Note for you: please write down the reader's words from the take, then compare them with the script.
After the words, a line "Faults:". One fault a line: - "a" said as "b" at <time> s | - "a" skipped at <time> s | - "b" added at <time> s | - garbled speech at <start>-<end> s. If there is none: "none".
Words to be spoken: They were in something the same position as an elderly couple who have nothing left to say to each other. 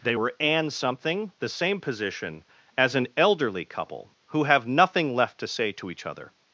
They were and something the same position as an elderly couple who have nothing left to say to each other.
Faults:
- "in" said as "and" at 0.4 s